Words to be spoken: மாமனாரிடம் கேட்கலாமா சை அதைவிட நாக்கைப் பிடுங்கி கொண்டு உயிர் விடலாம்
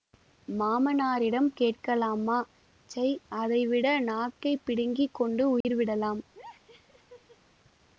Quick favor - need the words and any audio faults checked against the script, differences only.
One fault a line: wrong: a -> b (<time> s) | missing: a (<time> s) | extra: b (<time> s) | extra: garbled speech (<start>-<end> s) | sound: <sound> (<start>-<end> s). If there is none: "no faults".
sound: dropout (5.6-5.6 s)
sound: laugh (6.3-7.4 s)